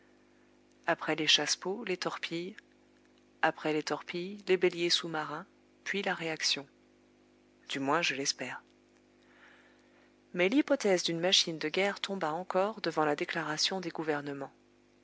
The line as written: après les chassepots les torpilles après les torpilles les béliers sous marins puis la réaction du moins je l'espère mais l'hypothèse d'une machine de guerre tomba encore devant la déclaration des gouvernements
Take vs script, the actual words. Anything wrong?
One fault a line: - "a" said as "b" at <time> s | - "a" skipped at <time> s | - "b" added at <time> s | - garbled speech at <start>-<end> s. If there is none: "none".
none